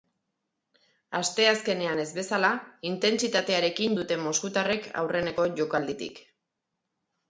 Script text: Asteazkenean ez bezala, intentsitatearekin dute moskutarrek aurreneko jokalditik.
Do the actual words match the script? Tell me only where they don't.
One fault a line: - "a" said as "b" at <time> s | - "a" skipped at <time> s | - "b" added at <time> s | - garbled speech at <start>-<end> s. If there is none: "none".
none